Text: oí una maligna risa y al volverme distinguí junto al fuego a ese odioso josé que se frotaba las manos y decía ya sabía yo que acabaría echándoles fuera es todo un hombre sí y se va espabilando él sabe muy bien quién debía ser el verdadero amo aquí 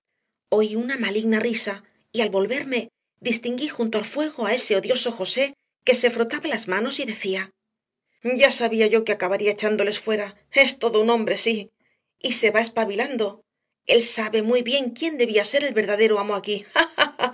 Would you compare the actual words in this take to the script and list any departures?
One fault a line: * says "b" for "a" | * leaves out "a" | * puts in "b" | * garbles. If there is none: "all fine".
all fine